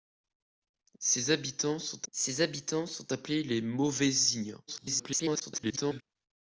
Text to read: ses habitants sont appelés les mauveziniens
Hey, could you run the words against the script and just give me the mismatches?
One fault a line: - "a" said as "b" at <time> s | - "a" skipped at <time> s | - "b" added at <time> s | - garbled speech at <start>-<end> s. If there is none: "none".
- "ses habitants sont" added at 2.1 s
- garbled speech at 4.7-6.0 s